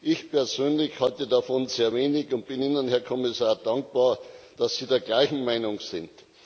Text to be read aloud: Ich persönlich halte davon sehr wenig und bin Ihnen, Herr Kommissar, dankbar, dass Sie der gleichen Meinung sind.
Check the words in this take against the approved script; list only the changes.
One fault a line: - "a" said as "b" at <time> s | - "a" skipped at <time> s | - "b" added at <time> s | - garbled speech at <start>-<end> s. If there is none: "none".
none